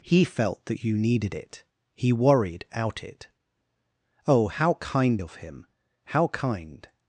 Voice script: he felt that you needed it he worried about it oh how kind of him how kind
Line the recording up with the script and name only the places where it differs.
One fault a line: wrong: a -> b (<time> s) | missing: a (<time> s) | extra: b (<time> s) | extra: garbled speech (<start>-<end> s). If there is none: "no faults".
wrong: about -> out (2.7 s)